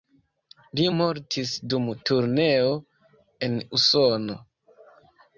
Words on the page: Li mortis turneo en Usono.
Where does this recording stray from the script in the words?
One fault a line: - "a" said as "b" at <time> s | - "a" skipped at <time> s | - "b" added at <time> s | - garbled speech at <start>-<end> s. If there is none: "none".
- "dum" added at 1.7 s